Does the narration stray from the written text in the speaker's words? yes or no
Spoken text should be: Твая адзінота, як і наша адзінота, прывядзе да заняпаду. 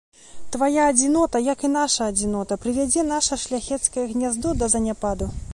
yes